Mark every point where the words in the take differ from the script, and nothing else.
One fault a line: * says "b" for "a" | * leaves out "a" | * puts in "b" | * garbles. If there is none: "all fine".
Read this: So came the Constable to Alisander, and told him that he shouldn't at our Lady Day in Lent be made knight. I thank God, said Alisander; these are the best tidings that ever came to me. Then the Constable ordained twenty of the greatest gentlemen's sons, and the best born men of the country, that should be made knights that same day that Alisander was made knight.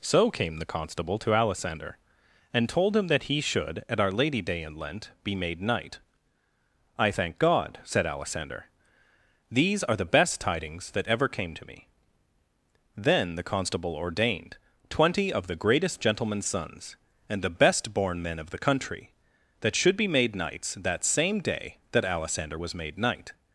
* says "should" for "shouldn't"